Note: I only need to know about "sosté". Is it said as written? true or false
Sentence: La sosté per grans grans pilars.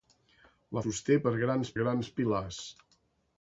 true